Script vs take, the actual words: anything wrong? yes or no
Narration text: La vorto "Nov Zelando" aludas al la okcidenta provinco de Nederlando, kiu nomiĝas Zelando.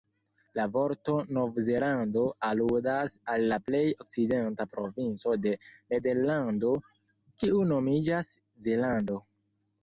yes